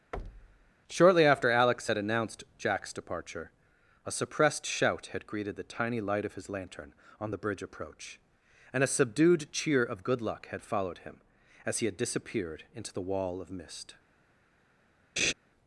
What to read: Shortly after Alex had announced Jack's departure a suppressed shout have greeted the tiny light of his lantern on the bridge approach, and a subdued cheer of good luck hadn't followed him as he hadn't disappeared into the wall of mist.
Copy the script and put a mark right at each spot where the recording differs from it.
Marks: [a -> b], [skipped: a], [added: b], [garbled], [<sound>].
[thud] Shortly after Alex had announced Jack's departure a suppressed shout [have -> had] greeted the tiny light of his lantern on the bridge approach, and a subdued cheer of good luck [hadn't -> had] followed him as he [hadn't -> had] disappeared into the wall of mist. [laugh]